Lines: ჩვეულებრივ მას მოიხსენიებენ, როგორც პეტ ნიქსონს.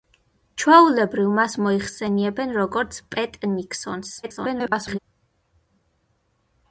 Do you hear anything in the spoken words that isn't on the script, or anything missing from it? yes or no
yes